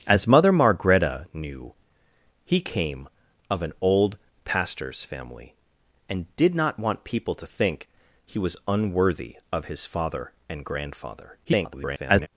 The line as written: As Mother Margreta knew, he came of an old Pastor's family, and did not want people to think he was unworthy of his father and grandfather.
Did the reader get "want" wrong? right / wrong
right